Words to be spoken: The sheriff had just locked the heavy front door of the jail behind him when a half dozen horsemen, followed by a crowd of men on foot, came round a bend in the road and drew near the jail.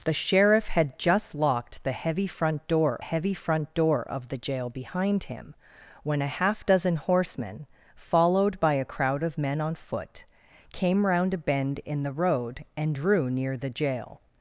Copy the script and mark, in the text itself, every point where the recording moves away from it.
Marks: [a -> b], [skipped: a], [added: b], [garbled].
The sheriff had just locked the heavy front door [added: heavy front door] of the jail behind him when a half dozen horsemen, followed by a crowd of men on foot, came round a bend in the road and drew near the jail.